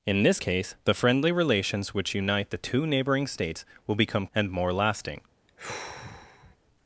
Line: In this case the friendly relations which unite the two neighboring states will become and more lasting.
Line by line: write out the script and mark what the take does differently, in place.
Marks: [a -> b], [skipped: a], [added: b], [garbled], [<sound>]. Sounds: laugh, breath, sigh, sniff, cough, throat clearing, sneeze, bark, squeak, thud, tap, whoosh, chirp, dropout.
In this case the friendly relations which unite the two neighboring states will become and more lasting. [sigh]